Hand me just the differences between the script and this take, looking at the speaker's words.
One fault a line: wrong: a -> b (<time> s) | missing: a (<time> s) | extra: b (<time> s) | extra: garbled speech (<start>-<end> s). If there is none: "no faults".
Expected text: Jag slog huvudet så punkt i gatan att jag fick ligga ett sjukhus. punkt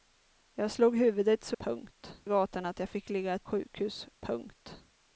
no faults